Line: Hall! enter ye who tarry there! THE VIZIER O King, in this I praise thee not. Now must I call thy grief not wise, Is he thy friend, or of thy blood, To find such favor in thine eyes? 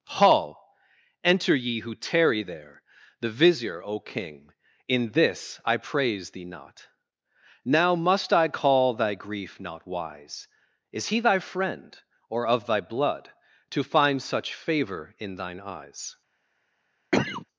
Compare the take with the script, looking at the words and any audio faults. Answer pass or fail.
fail